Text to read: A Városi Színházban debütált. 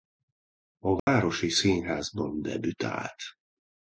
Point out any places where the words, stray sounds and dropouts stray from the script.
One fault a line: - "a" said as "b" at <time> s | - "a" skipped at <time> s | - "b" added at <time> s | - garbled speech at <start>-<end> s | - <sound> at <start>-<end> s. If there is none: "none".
- dropout at 1.0-1.1 s